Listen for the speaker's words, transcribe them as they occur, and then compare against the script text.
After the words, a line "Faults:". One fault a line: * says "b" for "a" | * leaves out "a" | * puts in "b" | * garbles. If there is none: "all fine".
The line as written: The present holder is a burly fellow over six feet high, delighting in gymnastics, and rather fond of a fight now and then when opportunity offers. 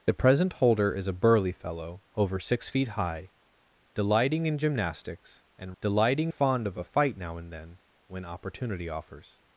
The present holder is a burly fellow over six feet high, delighting in gymnastics, and delighting fond of a fight now and then when opportunity offers.
Faults:
* says "delighting" for "rather"